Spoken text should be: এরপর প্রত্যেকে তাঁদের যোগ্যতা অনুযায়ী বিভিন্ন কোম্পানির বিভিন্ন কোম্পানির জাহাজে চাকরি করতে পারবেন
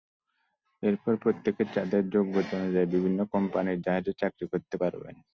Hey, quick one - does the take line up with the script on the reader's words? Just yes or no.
no